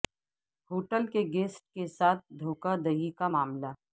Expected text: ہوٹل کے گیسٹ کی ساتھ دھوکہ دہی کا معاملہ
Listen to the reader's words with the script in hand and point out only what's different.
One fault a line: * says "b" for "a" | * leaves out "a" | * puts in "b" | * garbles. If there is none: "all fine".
* says "کے" for "کی"